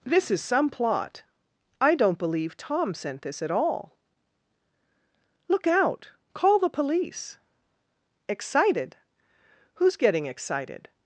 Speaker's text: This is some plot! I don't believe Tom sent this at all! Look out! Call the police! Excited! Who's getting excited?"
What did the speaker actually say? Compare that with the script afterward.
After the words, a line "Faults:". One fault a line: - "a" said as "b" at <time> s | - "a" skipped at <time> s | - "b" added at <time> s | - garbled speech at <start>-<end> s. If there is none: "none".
This is some plot! I don't believe Tom sent this at all! Look out! Call the police! Excited! Who's getting excited?"
Faults:
none